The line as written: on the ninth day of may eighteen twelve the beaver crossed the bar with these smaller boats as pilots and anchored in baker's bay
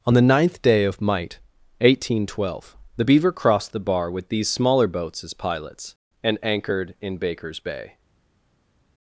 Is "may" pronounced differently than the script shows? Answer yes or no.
yes